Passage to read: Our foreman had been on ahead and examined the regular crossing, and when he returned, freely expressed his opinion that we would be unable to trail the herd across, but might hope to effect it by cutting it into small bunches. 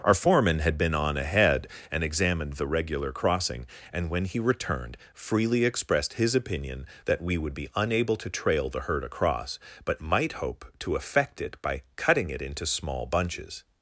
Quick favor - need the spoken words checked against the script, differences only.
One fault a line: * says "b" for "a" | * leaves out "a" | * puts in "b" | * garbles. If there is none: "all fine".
all fine